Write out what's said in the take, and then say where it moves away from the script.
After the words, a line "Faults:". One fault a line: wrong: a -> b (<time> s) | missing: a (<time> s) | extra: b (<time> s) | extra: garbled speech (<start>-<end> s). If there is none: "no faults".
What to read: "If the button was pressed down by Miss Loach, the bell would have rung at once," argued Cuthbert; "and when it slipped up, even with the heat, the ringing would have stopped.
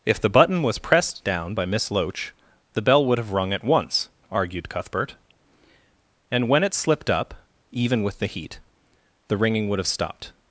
"If the button was pressed down by Miss Loach, the bell would have rung at once," argued Cuthbert; "and when it slipped up, even with the heat, the ringing would have stopped.
Faults:
no faults